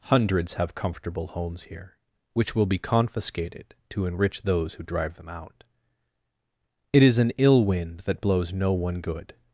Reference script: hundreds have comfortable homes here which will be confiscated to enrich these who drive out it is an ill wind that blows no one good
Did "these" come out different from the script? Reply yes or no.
yes